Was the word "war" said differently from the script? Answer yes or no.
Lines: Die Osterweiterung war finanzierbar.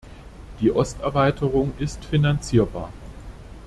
yes